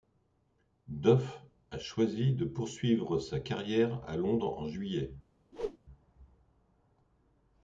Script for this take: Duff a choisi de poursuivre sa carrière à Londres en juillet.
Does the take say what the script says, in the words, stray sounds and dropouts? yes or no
no